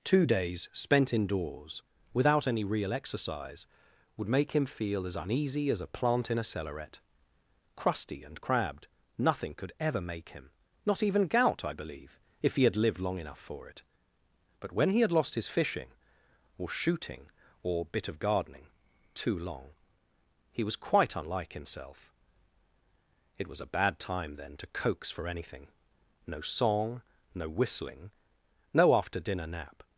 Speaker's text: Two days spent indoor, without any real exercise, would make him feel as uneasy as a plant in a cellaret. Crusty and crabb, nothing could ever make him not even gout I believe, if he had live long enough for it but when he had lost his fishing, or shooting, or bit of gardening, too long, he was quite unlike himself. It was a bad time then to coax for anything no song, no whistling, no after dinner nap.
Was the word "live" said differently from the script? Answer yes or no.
yes